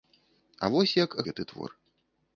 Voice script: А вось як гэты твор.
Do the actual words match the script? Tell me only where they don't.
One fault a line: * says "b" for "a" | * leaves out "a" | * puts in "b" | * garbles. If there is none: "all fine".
all fine